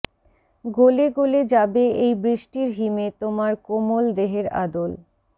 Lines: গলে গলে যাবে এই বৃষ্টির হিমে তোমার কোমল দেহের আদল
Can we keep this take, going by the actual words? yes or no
yes